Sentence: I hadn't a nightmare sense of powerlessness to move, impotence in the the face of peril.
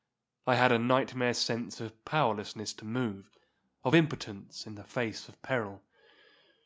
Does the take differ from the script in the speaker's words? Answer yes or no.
yes